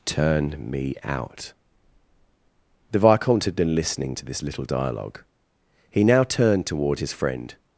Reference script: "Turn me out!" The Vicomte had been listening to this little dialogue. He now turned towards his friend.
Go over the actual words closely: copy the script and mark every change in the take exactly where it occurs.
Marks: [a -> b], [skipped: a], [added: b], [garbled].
"Turn me out!" The Vicomte had been listening to this little dialogue. He now turned [towards -> toward] his friend.